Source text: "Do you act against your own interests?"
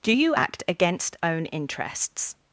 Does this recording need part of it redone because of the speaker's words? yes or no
yes